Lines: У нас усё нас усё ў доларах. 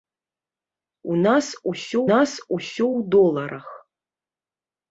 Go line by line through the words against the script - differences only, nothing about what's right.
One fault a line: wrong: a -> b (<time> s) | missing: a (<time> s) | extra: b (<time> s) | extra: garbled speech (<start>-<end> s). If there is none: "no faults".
no faults